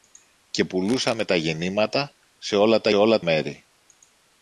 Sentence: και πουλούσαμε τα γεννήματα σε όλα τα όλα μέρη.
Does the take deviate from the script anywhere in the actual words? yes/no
no